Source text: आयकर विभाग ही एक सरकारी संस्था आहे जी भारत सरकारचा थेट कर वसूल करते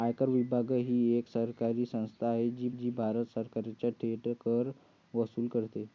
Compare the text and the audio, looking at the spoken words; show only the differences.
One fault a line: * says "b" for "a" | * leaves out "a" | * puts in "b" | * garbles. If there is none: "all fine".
* puts in "जी"